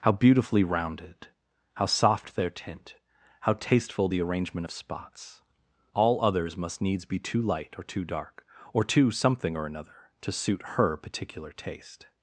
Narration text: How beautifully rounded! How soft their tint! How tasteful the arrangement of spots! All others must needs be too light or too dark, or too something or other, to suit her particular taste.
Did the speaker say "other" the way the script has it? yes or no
no